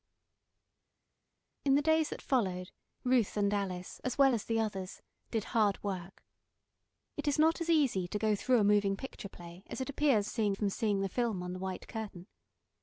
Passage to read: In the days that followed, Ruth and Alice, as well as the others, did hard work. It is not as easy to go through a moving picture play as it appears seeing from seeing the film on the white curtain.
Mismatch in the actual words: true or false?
false